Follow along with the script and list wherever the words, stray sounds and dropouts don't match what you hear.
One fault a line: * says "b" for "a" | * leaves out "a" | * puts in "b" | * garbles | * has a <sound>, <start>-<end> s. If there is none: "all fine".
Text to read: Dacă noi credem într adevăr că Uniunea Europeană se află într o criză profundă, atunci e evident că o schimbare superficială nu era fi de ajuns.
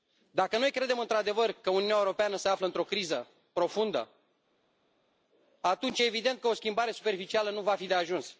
* says "va" for "era"